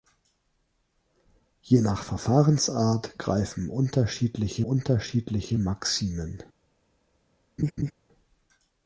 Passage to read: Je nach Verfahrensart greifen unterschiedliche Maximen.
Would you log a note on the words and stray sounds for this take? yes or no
yes